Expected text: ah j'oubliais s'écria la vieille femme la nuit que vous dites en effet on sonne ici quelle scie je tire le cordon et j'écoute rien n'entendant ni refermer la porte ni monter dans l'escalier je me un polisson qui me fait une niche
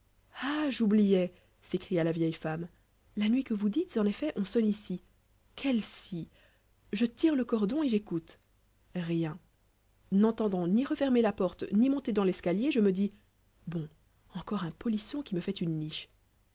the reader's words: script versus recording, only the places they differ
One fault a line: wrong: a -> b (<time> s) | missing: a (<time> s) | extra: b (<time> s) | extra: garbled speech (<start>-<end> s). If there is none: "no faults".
extra: dis bon encore (12.9 s)